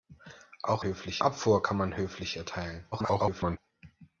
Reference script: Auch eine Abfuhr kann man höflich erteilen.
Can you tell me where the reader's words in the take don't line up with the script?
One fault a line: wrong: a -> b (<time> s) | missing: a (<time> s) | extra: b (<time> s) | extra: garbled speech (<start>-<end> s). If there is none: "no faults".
wrong: eine -> höflich (0.8 s)
extra: garbled speech (2.9-3.6 s)